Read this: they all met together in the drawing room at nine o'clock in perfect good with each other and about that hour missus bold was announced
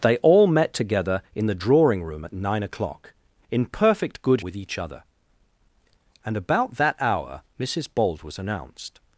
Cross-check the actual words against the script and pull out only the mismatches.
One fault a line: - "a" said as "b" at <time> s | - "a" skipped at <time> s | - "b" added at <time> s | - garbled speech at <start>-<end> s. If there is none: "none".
none